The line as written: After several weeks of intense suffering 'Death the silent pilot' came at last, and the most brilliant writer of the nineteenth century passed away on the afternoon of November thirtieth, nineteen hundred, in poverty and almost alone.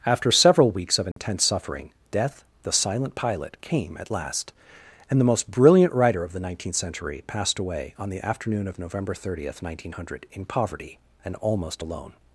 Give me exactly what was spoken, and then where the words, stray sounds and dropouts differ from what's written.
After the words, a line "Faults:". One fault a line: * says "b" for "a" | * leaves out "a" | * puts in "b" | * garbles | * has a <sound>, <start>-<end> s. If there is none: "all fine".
After several weeks of intense suffering 'Death the silent pilot' came at last, and the most brilliant writer of the nineteenth century passed away on the afternoon of November thirtieth, nineteen hundred, in poverty and almost alone.
Faults:
* has a dropout, 1.1-1.2 s